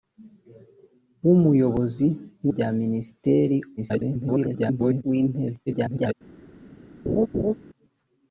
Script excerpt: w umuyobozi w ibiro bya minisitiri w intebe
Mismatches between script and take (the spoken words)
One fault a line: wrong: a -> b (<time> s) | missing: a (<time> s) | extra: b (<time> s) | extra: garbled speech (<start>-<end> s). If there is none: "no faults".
missing: ibiro (2.5 s)
extra: garbled speech (3.8-5.0 s)
extra: garbled speech (5.7-6.1 s)